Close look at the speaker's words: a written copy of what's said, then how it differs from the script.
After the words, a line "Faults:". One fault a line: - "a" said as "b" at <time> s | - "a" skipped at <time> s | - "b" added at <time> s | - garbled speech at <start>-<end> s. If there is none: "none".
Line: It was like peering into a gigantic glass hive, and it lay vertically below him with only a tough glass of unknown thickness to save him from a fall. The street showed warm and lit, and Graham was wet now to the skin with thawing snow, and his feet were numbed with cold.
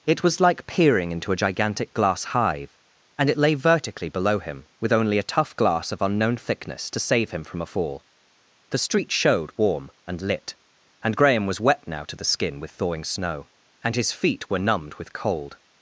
It was like peering into a gigantic glass hive, and it lay vertically below him with only a tough glass of unknown thickness to save him from a fall. The street showed warm and lit, and Graham was wet now to the skin with thawing snow, and his feet were numbed with cold.
Faults:
none